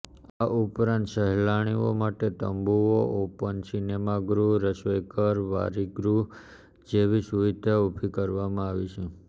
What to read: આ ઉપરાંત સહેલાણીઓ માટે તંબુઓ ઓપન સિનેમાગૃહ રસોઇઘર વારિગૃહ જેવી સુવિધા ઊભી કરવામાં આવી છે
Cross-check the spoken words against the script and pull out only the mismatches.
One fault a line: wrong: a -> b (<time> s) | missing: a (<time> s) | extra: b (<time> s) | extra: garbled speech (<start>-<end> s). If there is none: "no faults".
no faults